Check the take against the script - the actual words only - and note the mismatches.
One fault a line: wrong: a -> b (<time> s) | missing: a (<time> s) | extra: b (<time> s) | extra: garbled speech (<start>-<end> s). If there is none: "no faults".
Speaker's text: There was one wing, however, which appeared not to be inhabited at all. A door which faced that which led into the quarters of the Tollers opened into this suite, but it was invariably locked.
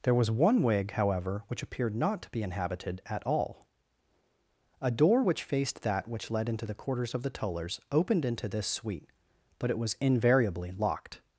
wrong: wing -> wig (0.6 s)